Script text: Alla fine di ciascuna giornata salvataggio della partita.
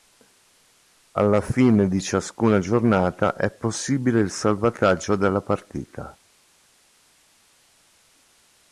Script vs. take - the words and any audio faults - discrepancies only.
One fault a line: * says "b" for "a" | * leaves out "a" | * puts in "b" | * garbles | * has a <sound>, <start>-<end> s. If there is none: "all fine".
* puts in "è possibile il"